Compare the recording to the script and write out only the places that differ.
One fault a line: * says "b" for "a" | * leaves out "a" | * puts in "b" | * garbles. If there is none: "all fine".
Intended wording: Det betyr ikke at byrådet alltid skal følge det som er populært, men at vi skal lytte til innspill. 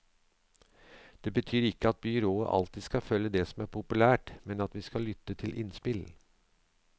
all fine